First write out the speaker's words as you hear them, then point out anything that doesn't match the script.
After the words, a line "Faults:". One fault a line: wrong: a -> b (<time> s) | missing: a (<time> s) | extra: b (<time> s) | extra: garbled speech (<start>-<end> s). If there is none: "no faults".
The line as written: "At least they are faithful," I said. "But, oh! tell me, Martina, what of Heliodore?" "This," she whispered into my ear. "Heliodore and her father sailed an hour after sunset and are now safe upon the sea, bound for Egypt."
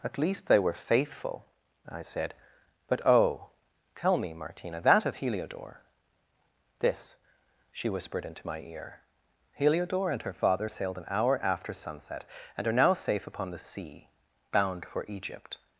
"At least they were faithful," I said. "But, oh! tell me, Martina, that of Heliodore?" "This," she whispered into my ear. "Heliodore and her father sailed an hour after sunset and are now safe upon the sea, bound for Egypt."
Faults:
wrong: are -> were (0.6 s)
wrong: what -> that (4.8 s)